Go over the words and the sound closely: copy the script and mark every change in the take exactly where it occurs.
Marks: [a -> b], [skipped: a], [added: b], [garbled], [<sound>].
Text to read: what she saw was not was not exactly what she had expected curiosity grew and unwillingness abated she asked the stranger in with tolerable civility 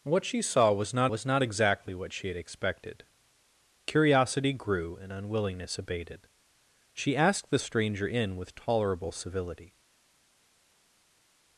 what she saw was not was not exactly what she had expected curiosity grew and unwillingness abated she asked the stranger in with tolerable civility